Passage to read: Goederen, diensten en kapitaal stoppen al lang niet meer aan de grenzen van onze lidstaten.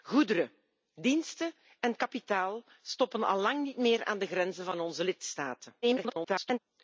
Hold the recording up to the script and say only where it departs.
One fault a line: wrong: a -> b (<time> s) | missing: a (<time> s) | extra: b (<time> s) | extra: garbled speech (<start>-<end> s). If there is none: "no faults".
extra: garbled speech (5.8-6.6 s)